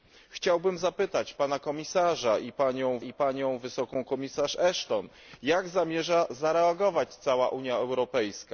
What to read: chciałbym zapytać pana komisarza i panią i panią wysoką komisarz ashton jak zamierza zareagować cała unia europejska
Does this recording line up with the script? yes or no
yes